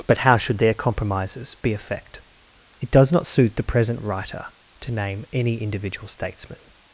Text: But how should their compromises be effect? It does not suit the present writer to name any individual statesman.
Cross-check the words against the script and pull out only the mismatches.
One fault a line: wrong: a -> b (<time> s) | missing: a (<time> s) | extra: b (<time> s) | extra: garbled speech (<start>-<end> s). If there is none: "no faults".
no faults